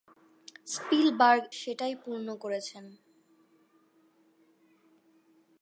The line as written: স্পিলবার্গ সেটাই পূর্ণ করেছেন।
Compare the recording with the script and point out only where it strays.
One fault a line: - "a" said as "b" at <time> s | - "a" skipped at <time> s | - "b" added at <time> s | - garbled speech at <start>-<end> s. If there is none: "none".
none